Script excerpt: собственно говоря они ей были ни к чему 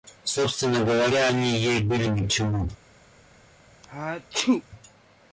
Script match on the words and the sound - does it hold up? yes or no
no